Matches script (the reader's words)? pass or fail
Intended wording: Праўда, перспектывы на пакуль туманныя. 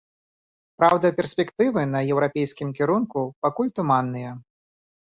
fail